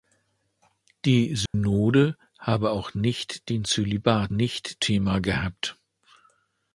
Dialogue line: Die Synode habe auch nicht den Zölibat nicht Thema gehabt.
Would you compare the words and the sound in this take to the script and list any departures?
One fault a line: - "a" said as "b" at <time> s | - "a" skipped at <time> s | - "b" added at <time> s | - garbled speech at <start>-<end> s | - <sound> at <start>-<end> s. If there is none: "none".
- dropout at 1.5-1.5 s